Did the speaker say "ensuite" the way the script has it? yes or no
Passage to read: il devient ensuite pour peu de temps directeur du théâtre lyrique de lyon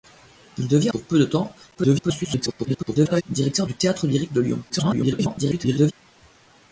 no